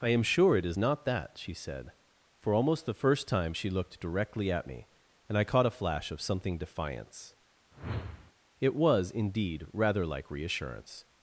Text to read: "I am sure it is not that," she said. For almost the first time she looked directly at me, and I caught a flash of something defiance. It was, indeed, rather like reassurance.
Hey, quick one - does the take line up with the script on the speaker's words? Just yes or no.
yes